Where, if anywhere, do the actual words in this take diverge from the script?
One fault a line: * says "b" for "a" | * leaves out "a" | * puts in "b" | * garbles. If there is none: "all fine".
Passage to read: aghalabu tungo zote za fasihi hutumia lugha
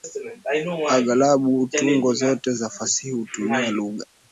all fine